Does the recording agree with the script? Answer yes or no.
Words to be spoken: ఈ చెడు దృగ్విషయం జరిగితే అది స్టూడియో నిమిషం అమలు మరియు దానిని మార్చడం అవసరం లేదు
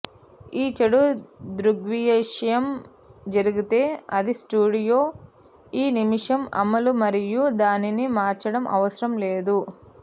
no